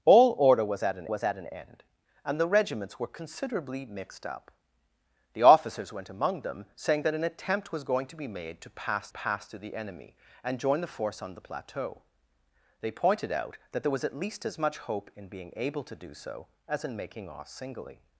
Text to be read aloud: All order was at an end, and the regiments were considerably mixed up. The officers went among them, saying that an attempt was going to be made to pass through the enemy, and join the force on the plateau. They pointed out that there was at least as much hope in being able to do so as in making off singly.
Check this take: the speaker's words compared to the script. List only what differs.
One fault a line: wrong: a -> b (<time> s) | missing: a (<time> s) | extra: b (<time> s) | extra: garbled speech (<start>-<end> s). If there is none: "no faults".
extra: was at an (1.1 s)
extra: pass (9.1 s)